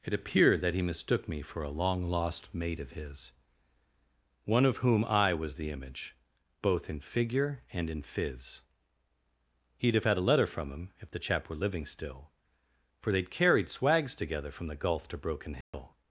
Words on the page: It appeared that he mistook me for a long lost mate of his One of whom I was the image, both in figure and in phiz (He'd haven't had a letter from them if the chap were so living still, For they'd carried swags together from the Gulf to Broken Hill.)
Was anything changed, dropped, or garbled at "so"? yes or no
yes